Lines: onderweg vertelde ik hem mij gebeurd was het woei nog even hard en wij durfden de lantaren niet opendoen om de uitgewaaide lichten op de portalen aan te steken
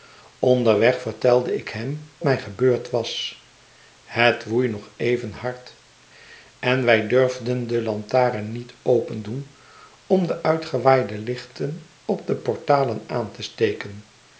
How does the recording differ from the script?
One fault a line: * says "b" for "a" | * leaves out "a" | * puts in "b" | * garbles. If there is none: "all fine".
all fine